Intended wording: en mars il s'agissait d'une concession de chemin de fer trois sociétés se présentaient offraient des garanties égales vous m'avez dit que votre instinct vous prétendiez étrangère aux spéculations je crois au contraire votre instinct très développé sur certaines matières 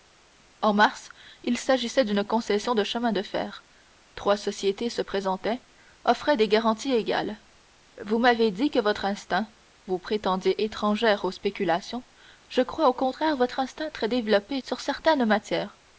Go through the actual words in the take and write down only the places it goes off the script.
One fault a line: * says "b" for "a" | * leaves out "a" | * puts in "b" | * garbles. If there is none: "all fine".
all fine